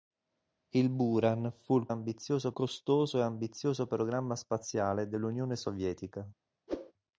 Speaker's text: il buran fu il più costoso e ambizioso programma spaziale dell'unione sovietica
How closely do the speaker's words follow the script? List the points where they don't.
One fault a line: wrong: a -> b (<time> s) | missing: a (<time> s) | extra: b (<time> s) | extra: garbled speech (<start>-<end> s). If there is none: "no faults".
wrong: più -> ambizioso (1.9 s)